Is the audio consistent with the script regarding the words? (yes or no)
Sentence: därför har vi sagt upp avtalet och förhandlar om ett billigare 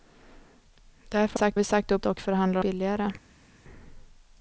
no